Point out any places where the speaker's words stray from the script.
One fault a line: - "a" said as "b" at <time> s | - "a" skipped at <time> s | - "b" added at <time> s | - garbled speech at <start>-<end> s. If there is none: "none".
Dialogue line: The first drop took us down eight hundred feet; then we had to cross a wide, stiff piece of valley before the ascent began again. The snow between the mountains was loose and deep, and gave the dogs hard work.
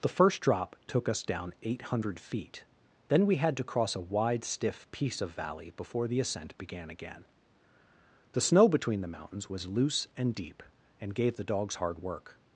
none